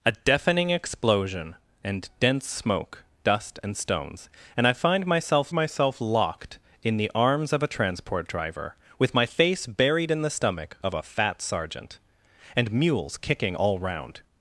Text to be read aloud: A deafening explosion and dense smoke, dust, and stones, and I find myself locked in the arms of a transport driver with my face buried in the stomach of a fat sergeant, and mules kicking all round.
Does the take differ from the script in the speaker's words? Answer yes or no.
yes